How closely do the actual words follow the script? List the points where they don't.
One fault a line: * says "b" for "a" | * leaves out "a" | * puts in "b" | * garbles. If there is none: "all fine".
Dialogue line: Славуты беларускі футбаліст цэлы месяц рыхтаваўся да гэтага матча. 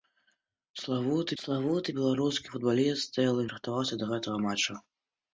* puts in "славуты"
* leaves out "месяц"